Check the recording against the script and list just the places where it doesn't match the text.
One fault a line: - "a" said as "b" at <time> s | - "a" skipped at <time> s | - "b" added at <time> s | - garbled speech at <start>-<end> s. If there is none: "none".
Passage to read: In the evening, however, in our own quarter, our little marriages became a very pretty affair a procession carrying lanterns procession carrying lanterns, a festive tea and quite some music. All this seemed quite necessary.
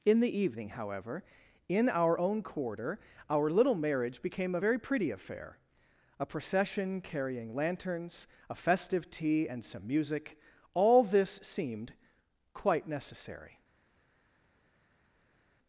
- "marriages" said as "marriage" at 3.8 s
- "procession carrying lanterns" skipped at 8.3 s
- "quite" skipped at 9.6 s